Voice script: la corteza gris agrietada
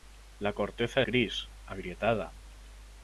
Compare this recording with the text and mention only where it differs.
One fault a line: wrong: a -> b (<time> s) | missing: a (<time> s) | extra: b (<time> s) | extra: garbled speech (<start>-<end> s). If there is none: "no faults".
no faults